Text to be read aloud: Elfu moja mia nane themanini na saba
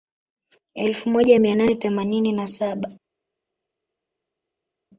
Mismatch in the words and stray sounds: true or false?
false